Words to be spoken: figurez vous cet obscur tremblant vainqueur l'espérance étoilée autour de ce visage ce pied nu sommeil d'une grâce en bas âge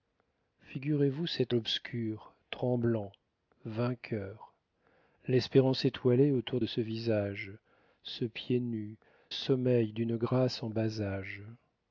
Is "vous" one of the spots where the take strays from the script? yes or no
no